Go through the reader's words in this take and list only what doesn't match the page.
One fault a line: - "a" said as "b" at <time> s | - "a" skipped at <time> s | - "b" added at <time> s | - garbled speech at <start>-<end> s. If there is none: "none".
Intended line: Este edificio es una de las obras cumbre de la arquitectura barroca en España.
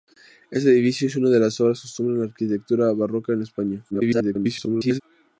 - garbled speech at 3.9-5.0 s